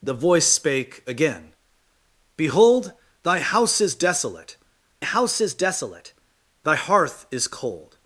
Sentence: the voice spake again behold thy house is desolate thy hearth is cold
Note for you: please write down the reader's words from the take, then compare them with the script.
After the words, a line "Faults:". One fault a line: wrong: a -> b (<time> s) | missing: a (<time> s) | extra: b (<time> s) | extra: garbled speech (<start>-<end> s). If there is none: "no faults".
the voice spake again behold thy house is desolate house is desolate thy hearth is cold
Faults:
extra: house is desolate (5.0 s)